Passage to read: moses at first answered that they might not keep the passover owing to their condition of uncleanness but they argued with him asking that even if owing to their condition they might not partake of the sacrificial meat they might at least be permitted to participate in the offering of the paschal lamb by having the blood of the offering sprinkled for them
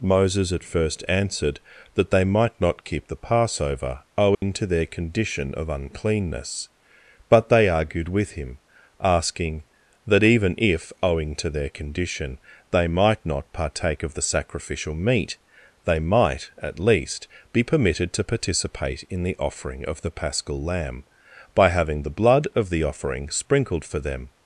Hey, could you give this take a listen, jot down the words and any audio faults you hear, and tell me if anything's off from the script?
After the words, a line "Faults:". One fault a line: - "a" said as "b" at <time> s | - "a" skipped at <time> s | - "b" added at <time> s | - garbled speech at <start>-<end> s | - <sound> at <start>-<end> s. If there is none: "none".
moses at first answered that they might not keep the passover owing to their condition of uncleanness but they argued with him asking that even if owing to their condition they might not partake of the sacrificial meat they might at least be permitted to participate in the offering of the paschal lamb by having the blood of the offering sprinkled for them
Faults:
- dropout at 4.3-4.4 s